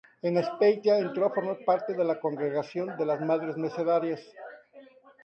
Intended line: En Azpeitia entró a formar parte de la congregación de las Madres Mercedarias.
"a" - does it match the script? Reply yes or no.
yes